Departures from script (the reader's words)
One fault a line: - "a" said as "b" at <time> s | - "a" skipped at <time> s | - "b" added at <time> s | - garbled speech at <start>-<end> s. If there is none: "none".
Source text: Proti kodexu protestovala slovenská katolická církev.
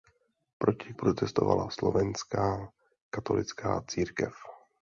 - "kodexu" skipped at 0.9 s